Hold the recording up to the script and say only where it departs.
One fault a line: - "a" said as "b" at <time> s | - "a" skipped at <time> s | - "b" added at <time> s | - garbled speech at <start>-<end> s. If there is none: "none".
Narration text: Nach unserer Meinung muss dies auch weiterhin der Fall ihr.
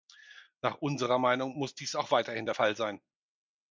- "ihr" said as "sein" at 2.8 s